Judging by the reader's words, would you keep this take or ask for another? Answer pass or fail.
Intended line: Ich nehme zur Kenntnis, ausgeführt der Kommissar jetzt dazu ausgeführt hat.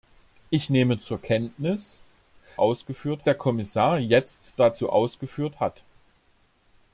pass